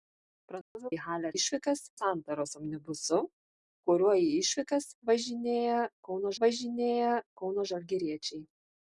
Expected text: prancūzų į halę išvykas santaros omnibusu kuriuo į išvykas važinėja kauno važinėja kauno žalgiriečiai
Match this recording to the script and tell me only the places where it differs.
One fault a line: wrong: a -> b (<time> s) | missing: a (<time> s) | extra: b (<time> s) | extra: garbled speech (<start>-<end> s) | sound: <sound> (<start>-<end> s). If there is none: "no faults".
sound: dropout (0.6-0.8 s)